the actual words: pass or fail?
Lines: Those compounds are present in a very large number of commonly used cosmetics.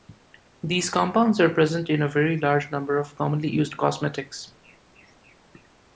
fail